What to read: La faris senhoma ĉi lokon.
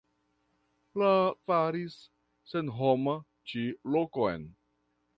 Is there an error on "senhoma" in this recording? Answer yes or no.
no